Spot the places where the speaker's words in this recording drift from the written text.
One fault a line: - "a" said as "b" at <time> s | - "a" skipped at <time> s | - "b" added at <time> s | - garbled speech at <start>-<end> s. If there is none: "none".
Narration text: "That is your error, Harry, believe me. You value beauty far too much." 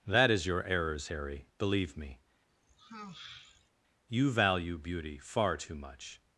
- "error" said as "errors" at 0.6 s